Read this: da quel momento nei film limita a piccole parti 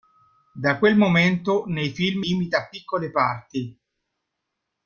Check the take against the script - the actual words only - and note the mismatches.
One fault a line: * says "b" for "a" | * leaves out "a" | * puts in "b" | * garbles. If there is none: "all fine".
all fine